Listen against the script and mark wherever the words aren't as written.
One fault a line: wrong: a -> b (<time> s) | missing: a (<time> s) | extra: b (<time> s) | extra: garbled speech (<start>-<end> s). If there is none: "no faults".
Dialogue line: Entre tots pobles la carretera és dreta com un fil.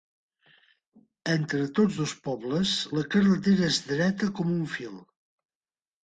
extra: dos (2.0 s)